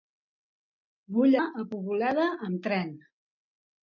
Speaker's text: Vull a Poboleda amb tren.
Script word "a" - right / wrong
right